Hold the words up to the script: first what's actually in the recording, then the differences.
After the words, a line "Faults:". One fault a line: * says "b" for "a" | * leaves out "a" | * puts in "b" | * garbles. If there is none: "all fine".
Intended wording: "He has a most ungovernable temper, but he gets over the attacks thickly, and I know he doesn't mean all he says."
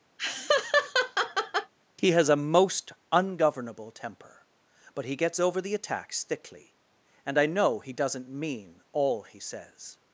"He has a most ungovernable temper, but he gets over the attacks thickly, and I know he doesn't mean all he says."
Faults:
all fine